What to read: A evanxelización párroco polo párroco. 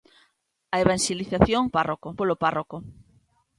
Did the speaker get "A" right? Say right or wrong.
right